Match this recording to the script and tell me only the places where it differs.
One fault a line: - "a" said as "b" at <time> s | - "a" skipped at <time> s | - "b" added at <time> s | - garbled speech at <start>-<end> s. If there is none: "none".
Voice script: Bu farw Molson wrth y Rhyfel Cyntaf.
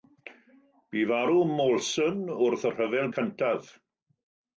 none